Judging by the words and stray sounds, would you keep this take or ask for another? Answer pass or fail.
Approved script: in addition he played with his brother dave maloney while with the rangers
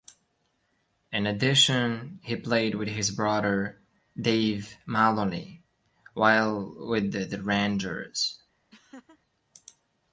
fail